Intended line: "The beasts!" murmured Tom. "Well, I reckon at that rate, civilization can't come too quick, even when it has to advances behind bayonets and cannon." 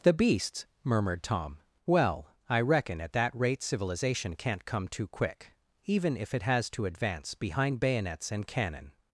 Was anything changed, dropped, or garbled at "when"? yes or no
yes